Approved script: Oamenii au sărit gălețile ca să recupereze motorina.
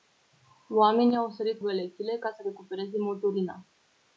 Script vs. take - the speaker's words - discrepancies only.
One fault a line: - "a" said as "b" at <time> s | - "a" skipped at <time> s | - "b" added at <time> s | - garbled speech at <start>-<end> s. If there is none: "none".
none